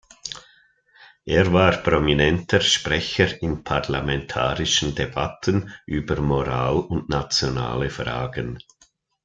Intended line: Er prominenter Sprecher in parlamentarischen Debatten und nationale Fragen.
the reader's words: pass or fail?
fail